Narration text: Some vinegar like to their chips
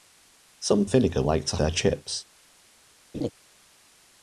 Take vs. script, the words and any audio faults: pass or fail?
fail